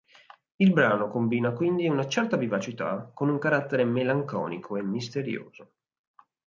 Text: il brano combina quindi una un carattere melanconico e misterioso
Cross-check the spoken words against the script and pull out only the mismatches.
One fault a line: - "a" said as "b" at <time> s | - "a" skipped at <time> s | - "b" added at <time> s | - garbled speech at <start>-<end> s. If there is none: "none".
- "certa vivacità con" added at 2.1 s